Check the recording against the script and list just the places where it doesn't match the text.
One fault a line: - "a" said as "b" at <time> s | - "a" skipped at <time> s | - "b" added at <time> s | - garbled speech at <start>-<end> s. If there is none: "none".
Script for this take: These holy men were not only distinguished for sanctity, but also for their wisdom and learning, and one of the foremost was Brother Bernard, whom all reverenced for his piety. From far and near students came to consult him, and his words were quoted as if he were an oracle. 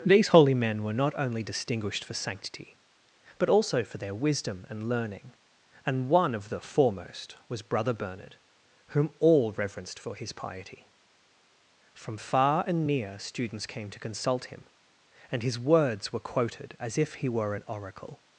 none